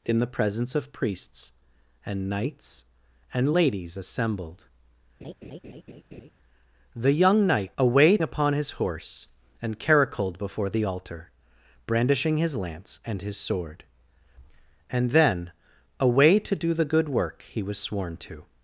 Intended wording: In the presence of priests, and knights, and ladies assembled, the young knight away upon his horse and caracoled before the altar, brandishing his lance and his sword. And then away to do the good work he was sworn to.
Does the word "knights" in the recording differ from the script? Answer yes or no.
no